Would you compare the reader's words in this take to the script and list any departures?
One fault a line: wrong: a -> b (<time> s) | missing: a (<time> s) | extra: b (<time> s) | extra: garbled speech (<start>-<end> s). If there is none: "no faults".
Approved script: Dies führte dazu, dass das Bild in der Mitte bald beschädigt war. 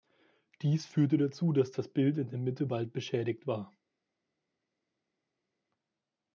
no faults